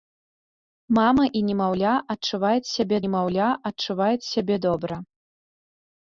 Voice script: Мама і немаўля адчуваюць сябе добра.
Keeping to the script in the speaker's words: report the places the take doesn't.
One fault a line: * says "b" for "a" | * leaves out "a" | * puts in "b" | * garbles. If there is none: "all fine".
* puts in "немаўля адчуваюць сябе"